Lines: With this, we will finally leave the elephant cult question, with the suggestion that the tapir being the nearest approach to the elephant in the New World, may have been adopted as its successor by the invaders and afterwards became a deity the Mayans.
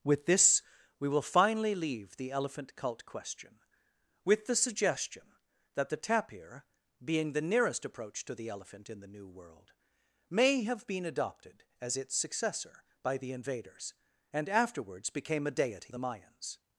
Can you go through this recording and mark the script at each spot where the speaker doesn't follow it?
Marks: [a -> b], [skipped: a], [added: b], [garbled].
With this, we will finally leave the elephant cult question, with the suggestion that the tapir being the nearest approach to the elephant in the New World, may have been adopted as its successor by the invaders and afterwards became a deity the Mayans.